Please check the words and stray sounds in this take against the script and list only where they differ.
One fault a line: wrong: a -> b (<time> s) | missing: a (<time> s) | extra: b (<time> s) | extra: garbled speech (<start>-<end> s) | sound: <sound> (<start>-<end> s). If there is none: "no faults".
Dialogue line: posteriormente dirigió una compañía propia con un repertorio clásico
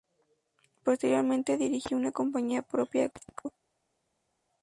missing: con un repertorio (3.1 s)